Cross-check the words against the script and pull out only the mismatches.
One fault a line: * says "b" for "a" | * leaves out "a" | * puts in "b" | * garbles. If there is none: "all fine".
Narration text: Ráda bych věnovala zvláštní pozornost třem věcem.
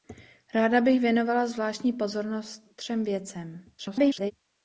* garbles